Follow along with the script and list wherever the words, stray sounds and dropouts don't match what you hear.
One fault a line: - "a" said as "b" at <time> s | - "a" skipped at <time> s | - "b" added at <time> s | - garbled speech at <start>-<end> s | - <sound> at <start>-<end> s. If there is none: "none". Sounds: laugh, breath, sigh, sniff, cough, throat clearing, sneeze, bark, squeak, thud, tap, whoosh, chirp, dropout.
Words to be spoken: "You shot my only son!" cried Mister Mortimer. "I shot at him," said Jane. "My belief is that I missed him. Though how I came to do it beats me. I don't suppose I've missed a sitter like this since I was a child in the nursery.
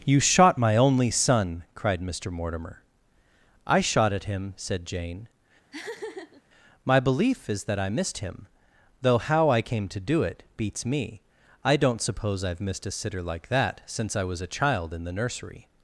- laugh at 5.7-6.4 s
- "this" said as "that" at 13.5 s